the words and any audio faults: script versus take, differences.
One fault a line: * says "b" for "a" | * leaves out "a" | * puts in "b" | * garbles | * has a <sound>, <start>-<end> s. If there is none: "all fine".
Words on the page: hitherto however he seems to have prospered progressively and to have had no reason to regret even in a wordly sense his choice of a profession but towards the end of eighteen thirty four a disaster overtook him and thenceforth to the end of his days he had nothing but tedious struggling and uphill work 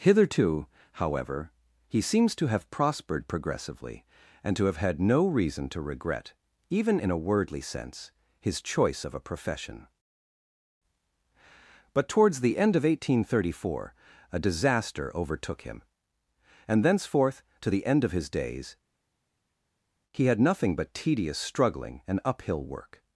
all fine